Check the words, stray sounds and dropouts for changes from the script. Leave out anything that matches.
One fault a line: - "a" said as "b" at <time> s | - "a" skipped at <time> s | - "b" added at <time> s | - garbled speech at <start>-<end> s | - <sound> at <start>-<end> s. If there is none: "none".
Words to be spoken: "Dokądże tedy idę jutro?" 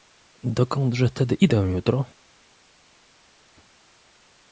none